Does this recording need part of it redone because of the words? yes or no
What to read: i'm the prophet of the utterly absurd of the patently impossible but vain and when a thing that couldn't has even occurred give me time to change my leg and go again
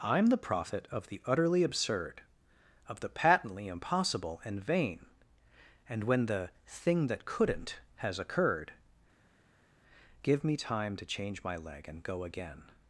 yes